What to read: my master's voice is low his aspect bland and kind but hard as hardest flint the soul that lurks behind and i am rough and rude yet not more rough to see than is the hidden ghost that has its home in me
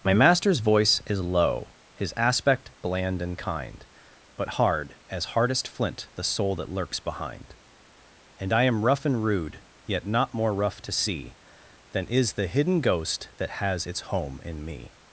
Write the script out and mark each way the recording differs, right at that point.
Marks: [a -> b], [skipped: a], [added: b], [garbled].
my master's voice is low his aspect bland and kind but hard as hardest flint the soul that lurks behind and i am rough and rude yet not more rough to see than is the hidden ghost that has its home in me